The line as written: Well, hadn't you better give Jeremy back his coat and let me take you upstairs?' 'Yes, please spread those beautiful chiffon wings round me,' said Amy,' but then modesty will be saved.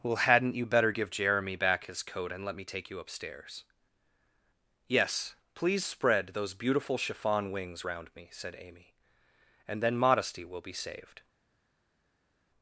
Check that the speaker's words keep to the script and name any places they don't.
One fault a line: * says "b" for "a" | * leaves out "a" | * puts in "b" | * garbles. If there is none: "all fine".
* says "and" for "but"